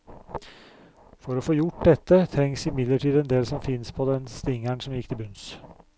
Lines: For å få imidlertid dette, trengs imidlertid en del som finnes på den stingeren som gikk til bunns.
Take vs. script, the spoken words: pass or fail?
fail